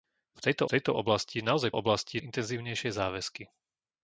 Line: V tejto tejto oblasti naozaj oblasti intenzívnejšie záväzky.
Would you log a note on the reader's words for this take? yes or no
no